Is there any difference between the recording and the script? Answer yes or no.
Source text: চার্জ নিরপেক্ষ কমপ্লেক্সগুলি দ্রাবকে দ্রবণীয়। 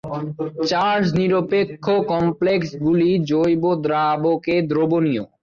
yes